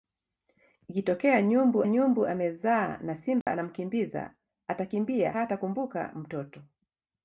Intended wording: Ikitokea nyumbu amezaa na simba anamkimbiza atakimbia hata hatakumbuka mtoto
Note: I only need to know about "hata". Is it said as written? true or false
false